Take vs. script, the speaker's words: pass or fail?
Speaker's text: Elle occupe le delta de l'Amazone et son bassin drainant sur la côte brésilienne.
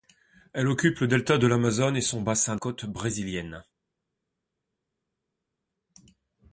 fail